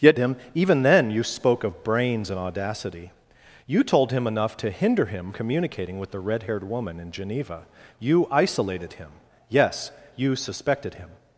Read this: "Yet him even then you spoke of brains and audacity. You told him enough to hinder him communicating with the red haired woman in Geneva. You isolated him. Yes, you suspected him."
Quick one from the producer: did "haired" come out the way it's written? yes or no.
yes